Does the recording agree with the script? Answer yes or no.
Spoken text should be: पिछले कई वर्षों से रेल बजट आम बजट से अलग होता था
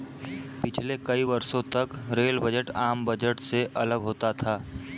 no